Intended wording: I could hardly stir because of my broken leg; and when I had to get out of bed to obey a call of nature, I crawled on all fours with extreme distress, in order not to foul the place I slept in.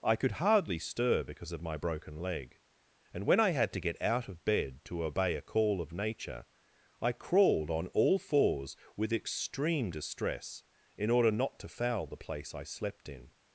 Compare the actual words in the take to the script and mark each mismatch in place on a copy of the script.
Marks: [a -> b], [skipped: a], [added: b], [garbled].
I could hardly stir because of my broken leg; and when I had to get out of bed to obey a call of nature, I crawled on all fours with extreme distress, in order not to foul the place I slept in.